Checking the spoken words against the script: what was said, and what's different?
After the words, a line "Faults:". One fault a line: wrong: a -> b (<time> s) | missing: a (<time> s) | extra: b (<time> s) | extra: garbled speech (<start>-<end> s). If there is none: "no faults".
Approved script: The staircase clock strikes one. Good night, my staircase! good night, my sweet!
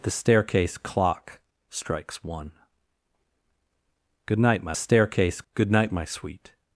The staircase clock strikes one. Good night, my staircase! good night, my sweet!
Faults:
no faults